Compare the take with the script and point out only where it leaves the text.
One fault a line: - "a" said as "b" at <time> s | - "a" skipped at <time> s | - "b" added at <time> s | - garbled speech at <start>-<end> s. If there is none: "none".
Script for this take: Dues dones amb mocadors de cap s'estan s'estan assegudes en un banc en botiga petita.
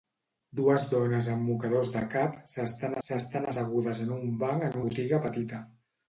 none